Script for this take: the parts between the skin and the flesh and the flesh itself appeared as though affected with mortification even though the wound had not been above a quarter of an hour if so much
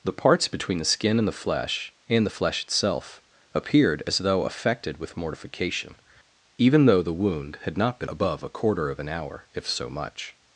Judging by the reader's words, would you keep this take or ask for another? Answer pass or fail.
pass